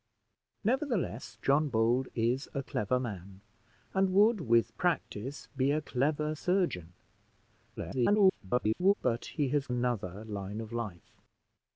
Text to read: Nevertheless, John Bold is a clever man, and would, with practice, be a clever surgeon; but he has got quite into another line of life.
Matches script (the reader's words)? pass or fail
fail